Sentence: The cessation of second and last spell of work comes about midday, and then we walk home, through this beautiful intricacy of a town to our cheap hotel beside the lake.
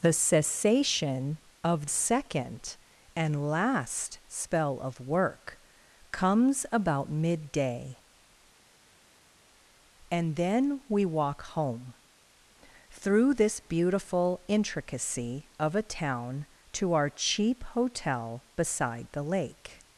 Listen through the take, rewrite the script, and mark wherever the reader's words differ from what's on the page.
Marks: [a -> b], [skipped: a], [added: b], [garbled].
The cessation of second and last spell of work comes about midday, and then we walk home, through this beautiful intricacy of a town to our cheap hotel beside the lake.